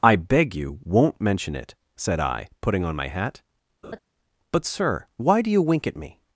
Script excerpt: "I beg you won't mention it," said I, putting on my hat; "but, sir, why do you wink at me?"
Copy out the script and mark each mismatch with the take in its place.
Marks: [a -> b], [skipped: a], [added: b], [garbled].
"I beg you won't mention it," said I, putting on my hat; "but, sir, why do you wink at me?"